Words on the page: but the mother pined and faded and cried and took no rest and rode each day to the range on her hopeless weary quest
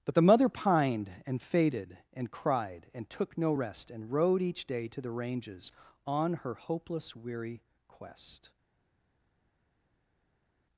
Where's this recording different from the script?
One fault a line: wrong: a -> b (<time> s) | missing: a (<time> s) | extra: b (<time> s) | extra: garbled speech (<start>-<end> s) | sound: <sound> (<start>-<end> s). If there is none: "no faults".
wrong: range -> ranges (5.1 s)